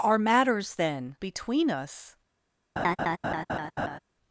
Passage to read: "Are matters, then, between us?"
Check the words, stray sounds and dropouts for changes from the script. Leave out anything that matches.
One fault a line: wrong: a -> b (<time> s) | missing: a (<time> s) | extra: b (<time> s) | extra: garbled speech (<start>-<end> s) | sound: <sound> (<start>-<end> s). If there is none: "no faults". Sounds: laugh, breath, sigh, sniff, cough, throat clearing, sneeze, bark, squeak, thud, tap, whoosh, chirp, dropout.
sound: laugh (2.8-4.0 s)